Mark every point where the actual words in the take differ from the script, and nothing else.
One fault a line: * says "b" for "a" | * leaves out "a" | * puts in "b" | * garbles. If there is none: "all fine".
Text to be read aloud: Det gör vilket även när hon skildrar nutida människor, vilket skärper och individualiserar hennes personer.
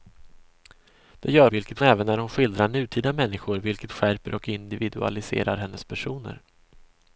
all fine